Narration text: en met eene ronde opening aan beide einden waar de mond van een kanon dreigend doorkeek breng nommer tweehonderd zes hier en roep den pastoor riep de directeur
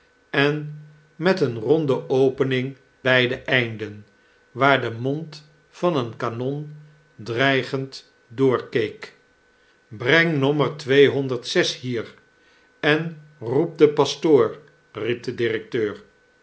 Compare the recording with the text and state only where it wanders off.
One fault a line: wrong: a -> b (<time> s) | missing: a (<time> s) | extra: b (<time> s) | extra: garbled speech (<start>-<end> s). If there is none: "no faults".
missing: aan (2.8 s)